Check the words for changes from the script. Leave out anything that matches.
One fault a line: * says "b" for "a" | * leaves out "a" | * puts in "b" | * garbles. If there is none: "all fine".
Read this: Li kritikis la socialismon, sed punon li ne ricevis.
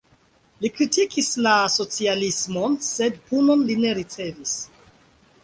all fine